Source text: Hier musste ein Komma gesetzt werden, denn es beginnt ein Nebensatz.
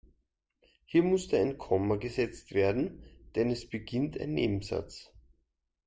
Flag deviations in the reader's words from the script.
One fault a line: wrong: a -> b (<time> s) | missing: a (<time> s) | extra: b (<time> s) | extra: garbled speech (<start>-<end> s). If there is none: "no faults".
no faults